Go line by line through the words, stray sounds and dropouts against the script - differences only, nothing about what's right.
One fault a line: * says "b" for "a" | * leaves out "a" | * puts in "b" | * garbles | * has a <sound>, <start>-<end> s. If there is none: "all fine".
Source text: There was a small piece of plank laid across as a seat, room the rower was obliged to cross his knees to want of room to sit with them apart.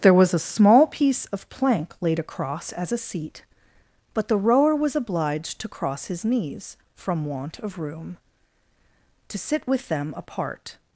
* says "but" for "room"
* says "from" for "to"